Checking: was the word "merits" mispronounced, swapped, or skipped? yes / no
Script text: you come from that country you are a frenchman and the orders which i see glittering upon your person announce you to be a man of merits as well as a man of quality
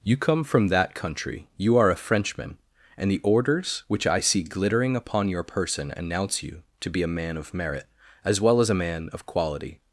yes